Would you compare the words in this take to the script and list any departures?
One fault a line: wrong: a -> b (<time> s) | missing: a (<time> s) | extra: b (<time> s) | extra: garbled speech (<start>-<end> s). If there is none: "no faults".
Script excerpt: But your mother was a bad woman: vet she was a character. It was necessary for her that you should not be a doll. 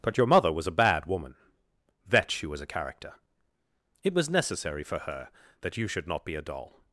no faults